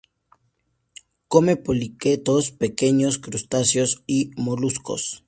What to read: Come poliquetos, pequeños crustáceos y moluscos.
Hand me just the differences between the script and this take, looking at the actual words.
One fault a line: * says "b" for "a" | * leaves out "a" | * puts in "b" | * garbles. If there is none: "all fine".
all fine